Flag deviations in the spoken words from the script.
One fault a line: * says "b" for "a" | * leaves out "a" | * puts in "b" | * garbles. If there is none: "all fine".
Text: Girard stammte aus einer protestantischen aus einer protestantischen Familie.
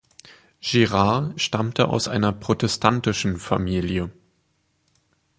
* leaves out "aus einer protestantischen"